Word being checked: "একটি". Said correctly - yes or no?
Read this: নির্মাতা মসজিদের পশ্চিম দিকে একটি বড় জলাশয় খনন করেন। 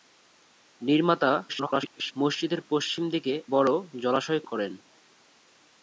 no